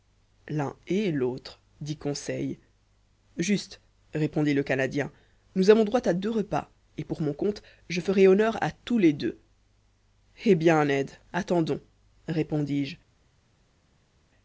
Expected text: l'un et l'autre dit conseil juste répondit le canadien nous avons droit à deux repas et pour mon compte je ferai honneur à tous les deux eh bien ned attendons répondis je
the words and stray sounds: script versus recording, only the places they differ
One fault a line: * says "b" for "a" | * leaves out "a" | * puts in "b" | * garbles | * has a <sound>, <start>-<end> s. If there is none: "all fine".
all fine